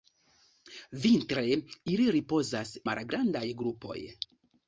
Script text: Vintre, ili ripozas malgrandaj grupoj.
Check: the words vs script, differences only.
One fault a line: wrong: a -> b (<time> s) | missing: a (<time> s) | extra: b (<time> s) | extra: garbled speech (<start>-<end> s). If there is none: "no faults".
no faults